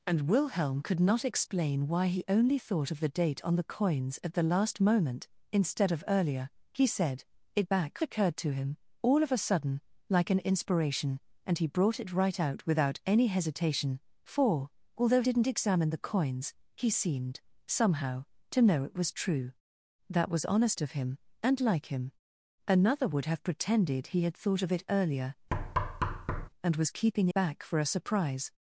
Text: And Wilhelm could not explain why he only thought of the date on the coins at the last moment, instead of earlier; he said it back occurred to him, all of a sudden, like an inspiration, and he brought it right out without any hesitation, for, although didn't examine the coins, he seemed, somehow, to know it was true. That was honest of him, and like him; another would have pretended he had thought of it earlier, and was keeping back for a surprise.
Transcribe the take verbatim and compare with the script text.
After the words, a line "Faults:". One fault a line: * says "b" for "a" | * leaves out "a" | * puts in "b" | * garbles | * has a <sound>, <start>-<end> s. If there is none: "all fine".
And Wilhelm could not explain why he only thought of the date on the coins at the last moment, instead of earlier; he said it back occurred to him, all of a sudden, like an inspiration, and he brought it right out without any hesitation, for, although didn't examine the coins, he seemed, somehow, to know it was true. That was honest of him, and like him; another would have pretended he had thought of it earlier, and was keeping back for a surprise.
Faults:
* has a thud, 25.5-26.5 s